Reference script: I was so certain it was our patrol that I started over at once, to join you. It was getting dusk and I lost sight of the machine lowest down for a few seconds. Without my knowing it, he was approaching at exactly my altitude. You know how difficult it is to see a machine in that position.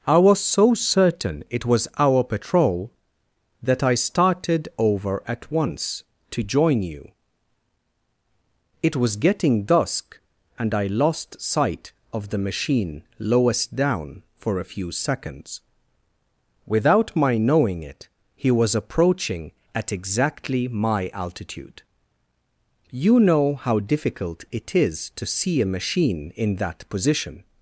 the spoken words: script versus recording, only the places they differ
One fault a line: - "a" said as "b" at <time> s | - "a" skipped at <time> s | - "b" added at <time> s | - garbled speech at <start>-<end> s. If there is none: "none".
none